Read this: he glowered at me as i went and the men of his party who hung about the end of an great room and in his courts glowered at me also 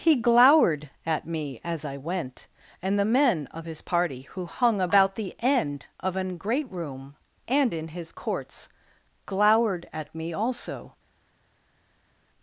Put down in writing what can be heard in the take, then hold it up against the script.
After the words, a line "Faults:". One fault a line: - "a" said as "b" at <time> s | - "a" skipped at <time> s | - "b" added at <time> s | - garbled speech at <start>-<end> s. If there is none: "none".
he glowered at me as i went and the men of his party who hung about the end of an great room and in his courts glowered at me also
Faults:
none